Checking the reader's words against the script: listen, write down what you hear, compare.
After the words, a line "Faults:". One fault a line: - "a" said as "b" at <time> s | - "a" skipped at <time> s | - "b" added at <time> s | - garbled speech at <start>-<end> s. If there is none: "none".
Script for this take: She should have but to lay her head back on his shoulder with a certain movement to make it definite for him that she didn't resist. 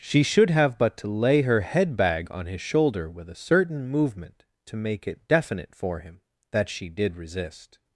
She should have but to lay her head bag on his shoulder with a certain movement to make it definite for him that she did resist.
Faults:
- "back" said as "bag" at 1.9 s
- "didn't" said as "did" at 6.9 s